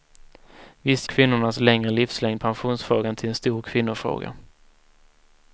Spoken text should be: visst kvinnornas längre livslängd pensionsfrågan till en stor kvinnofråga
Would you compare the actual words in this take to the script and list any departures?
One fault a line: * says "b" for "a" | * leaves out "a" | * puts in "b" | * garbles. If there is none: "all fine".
all fine